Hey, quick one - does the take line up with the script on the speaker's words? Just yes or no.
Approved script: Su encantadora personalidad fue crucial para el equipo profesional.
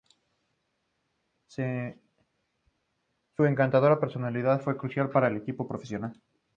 yes